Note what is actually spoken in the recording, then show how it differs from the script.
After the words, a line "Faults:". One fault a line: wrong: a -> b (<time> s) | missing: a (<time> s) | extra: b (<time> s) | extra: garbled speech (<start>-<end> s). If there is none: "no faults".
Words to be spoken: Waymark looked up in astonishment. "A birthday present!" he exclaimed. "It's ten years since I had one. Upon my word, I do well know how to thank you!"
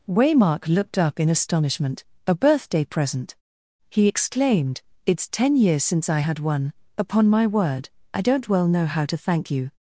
Waymark looked up in astonishment. "A birthday present!" he exclaimed. "It's ten years since I had one. Upon my word, I don't well know how to thank you!"
Faults:
wrong: do -> don't (8.2 s)